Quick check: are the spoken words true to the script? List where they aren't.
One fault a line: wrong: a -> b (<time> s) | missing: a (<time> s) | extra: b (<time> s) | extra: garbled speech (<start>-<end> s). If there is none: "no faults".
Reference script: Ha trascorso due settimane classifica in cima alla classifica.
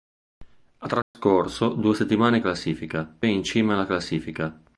no faults